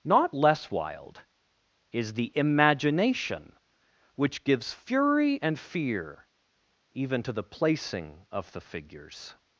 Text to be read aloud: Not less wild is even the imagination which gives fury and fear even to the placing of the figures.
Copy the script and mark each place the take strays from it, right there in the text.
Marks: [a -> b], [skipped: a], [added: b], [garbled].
Not less wild is [skipped: even] the imagination which gives fury and fear even to the placing of the figures.